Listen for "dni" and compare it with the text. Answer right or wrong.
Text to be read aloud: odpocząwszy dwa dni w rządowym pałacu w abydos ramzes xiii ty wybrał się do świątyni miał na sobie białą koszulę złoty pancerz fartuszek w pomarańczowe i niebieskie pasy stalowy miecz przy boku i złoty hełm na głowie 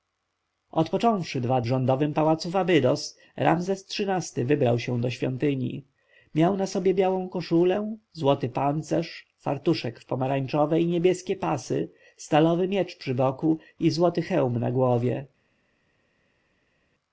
wrong